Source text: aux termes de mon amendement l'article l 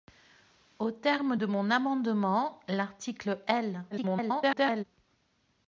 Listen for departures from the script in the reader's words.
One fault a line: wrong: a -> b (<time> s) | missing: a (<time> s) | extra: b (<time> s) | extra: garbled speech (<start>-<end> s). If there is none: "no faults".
extra: garbled speech (3.9-4.8 s)